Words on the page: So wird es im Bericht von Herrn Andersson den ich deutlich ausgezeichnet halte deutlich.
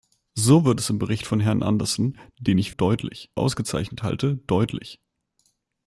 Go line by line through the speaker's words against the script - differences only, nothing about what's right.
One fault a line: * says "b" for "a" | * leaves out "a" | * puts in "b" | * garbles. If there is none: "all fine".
all fine